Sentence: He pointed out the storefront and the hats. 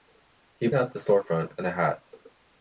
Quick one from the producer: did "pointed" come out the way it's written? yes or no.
no